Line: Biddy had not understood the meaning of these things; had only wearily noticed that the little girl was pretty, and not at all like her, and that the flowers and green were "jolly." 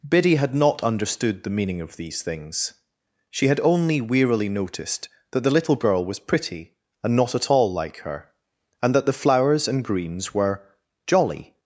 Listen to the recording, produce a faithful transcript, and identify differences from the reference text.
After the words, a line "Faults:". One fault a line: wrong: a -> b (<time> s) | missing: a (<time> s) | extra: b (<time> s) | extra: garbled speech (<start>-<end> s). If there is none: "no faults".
Biddy had not understood the meaning of these things; she had only wearily noticed that the little girl was pretty, and not at all like her, and that the flowers and greens were "jolly."
Faults:
extra: she (3.3 s)
wrong: green -> greens (9.8 s)